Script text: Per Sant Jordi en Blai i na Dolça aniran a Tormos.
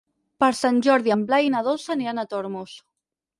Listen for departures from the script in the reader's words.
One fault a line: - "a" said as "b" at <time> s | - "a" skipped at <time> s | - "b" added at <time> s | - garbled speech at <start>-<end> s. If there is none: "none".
none